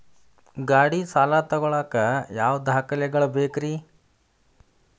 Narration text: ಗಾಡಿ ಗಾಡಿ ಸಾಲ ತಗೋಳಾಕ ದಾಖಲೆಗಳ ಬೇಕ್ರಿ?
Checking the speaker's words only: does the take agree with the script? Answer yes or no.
no